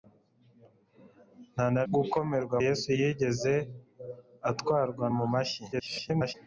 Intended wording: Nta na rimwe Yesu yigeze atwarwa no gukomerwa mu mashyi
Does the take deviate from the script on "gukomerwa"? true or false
true